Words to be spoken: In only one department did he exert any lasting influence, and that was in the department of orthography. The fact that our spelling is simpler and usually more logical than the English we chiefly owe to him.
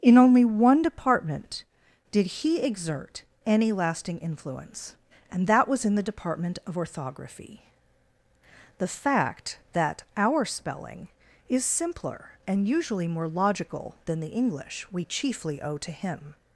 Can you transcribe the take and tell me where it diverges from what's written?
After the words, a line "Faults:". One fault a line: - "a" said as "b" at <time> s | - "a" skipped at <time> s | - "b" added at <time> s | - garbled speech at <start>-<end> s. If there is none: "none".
In only one department did he exert any lasting influence, and that was in the department of orthography. The fact that our spelling is simpler and usually more logical than the English we chiefly owe to him.
Faults:
none